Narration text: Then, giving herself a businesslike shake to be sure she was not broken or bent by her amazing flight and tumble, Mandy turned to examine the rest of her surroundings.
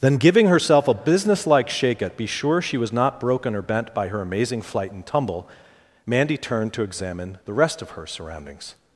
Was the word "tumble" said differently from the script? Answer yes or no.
no